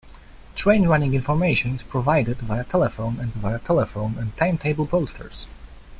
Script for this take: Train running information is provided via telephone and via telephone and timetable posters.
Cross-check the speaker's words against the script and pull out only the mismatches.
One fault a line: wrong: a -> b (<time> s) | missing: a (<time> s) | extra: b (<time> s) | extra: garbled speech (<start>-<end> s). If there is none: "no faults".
no faults